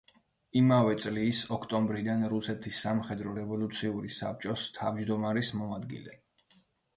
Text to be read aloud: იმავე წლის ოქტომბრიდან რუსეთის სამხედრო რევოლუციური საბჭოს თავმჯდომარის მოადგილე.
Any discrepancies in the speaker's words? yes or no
no